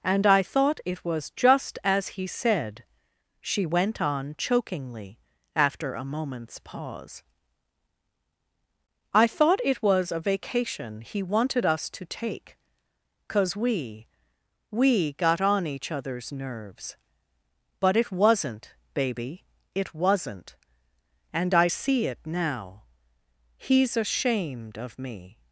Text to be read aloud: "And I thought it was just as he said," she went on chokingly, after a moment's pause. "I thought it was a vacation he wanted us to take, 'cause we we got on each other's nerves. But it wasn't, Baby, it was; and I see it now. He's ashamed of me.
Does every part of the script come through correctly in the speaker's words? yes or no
no